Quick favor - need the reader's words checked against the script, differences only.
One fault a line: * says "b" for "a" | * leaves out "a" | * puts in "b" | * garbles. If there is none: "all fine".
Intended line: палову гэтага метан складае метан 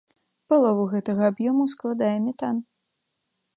* says "аб'ёму" for "метан"